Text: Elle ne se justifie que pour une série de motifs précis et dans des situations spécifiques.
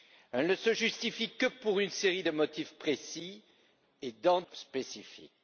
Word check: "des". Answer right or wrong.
wrong